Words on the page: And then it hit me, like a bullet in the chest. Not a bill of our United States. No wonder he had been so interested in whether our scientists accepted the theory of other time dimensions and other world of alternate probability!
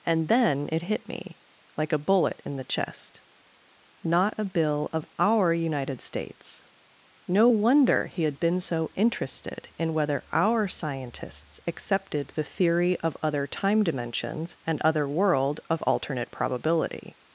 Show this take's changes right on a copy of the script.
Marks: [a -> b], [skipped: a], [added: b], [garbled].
And then it hit me, like a bullet in the chest. Not a bill of our United States. No wonder he had been so interested in whether our scientists accepted the theory of other time dimensions and other world of alternate probability!